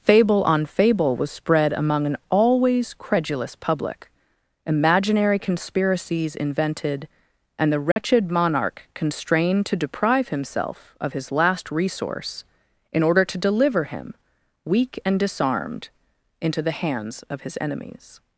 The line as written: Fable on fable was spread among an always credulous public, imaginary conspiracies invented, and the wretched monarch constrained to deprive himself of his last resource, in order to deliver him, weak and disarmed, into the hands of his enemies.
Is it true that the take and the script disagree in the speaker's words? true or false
false